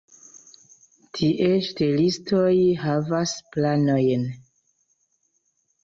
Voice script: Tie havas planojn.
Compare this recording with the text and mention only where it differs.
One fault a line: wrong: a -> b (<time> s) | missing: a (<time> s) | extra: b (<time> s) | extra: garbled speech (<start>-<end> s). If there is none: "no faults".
extra: ŝtelistoj (1.7 s)